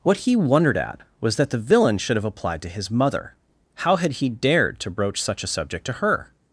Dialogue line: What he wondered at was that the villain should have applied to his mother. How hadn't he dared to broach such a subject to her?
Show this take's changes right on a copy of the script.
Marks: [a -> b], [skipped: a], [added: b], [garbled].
What he wondered at was that the villain should have applied to his mother. How [hadn't -> had] he dared to broach such a subject to her?